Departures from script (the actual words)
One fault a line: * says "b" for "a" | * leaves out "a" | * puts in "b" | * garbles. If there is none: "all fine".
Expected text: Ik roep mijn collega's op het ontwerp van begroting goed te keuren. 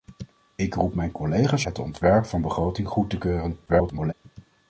* leaves out "op"
* garbles